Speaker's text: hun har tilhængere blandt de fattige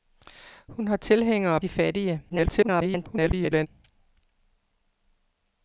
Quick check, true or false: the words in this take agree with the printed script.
false